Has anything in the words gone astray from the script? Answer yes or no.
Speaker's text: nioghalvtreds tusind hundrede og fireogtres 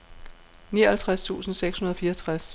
yes